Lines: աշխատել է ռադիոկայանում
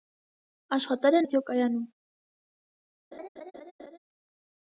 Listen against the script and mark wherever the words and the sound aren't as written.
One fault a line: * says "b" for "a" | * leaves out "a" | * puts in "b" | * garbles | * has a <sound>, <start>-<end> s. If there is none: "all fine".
* has a laugh, 3.1-4.0 s